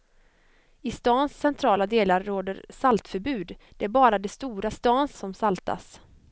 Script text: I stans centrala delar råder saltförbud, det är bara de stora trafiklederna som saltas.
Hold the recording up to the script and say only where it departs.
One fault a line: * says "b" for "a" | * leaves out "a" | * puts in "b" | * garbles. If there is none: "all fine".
* says "stans" for "trafiklederna"